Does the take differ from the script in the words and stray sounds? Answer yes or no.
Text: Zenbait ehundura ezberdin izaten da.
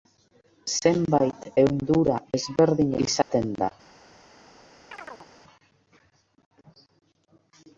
yes